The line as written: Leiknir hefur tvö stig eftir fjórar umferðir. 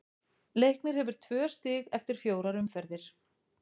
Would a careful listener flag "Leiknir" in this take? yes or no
no